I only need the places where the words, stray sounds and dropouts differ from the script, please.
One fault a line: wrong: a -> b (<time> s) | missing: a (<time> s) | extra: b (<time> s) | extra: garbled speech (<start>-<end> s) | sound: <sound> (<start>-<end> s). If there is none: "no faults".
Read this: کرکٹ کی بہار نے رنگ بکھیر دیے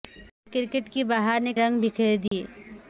sound: dropout (2.3-2.3 s)